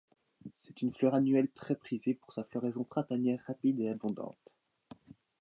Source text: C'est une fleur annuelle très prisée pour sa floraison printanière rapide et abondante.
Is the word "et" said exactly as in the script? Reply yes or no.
yes